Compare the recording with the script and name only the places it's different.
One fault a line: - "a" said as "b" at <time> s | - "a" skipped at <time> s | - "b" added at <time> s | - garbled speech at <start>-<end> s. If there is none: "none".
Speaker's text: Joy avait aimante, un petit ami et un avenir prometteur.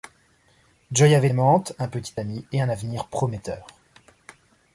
none